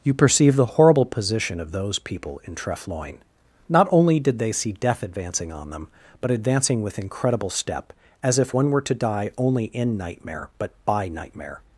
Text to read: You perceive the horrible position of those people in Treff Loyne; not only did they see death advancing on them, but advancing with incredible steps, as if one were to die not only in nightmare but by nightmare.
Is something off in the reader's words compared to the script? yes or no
yes